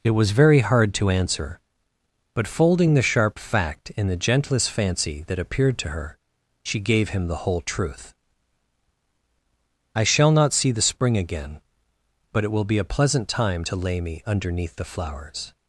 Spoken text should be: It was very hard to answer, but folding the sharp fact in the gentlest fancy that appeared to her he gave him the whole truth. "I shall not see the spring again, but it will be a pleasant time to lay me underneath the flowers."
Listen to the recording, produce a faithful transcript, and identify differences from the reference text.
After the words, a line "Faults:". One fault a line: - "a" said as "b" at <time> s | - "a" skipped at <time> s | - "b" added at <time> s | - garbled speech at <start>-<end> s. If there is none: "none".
It was very hard to answer, but folding the sharp fact in the gentlest fancy that appeared to her she gave him the whole truth. "I shall not see the spring again, but it will be a pleasant time to lay me underneath the flowers."
Faults:
- "he" said as "she" at 6.6 s